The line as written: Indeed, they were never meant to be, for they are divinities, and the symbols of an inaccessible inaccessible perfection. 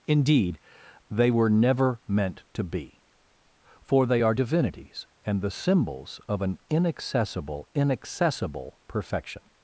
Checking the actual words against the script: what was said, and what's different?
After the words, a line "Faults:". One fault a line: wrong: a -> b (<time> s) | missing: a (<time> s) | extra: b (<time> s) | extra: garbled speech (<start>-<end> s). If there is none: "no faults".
Indeed, they were never meant to be, for they are divinities, and the symbols of an inaccessible inaccessible perfection.
Faults:
no faults